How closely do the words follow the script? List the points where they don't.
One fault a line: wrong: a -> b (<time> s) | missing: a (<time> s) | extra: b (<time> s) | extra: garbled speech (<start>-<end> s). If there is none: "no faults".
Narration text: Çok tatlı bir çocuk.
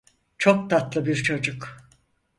no faults